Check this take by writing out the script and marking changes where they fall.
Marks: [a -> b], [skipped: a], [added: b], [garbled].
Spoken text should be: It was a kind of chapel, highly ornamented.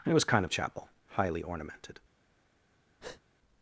It was [skipped: a] kind of chapel, highly ornamented.